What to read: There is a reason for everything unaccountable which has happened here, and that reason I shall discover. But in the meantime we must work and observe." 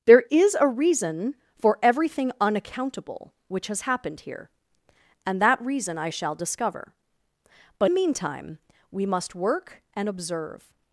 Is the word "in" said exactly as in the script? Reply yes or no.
no